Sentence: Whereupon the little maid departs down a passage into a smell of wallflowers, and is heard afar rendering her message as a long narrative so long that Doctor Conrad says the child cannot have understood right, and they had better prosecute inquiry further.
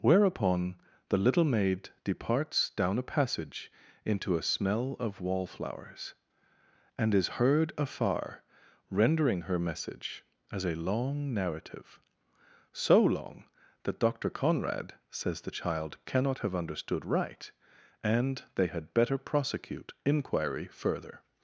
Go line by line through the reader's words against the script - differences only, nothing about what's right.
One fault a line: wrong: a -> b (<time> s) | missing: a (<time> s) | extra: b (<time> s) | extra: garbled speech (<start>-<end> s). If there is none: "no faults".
no faults